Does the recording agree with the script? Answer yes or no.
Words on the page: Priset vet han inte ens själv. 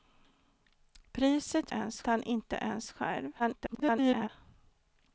no